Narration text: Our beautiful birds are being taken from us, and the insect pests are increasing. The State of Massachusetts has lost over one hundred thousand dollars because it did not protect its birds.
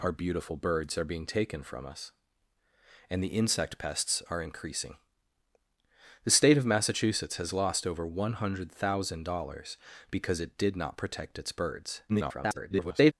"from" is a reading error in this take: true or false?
false